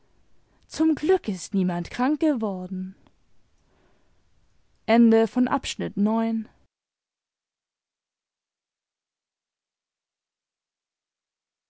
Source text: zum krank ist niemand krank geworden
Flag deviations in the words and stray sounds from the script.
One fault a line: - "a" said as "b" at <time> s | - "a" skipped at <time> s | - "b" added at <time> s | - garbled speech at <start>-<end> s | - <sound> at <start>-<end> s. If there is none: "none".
- "krank" said as "glück" at 0.9 s